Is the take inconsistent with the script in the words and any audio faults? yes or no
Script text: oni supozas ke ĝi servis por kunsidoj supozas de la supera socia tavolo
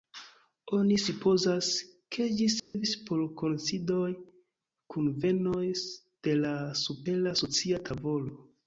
yes